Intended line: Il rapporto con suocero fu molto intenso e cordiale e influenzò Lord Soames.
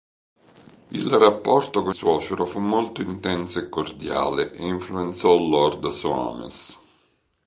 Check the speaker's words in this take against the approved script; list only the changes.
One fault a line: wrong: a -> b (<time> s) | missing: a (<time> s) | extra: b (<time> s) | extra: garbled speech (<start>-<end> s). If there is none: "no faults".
no faults